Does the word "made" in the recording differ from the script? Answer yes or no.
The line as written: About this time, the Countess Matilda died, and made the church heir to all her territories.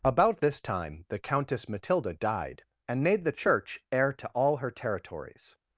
no